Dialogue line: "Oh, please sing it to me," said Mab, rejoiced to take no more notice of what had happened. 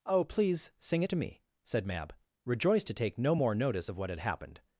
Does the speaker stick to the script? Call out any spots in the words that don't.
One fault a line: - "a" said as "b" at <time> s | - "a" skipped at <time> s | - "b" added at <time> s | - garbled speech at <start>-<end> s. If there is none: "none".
none